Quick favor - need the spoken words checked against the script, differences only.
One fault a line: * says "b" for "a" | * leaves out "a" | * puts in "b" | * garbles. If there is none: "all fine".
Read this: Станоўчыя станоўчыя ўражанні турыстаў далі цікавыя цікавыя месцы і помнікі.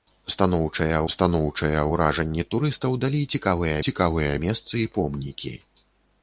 all fine